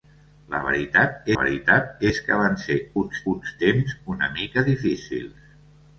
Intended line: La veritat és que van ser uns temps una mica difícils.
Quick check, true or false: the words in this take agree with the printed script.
false